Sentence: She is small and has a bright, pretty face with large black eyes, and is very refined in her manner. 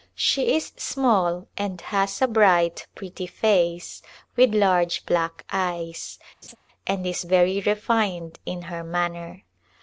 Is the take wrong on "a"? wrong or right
right